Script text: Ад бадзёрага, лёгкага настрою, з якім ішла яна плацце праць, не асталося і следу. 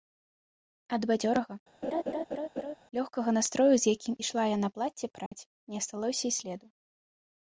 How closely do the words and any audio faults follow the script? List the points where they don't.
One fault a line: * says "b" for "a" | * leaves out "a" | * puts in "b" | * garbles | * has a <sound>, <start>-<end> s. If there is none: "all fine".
* has a laugh, 1.8-2.7 s
* has a dropout, 5.3-5.3 s